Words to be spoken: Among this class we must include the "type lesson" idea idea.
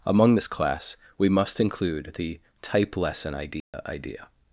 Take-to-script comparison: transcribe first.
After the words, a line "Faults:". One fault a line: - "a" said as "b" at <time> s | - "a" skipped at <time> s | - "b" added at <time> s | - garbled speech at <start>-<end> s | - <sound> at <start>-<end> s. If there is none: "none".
Among this class we must include the "type lesson" idea idea.
Faults:
- dropout at 3.6-3.7 s